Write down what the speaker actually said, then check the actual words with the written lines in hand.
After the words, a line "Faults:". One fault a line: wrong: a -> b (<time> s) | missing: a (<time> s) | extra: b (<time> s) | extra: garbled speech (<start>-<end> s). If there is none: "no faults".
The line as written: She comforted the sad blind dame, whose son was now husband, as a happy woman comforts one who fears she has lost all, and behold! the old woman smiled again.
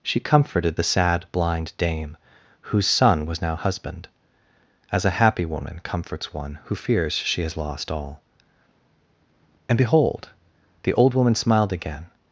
She comforted the sad blind dame, whose son was now husband, as a happy woman comforts one who fears she has lost all, and behold! the old woman smiled again.
Faults:
no faults